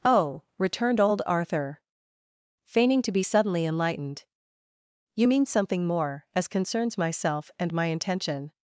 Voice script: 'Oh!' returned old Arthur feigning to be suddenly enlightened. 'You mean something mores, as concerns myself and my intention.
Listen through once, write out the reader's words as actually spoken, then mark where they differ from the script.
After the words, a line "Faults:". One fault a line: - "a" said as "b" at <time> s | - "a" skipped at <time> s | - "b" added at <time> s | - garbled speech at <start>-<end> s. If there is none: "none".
'Oh!' returned old Arthur feigning to be suddenly enlightened. 'You mean something more, as concerns myself and my intention.
Faults:
- "mores" said as "more" at 5.9 s